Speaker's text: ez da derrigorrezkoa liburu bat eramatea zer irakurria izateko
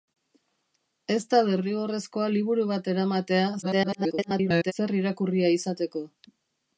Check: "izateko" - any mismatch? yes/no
no